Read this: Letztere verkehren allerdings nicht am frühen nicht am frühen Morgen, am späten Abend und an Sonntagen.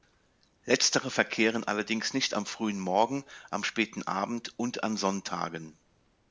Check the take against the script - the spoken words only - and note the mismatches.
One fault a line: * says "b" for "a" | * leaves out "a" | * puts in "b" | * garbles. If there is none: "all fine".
* leaves out "nicht am frühen"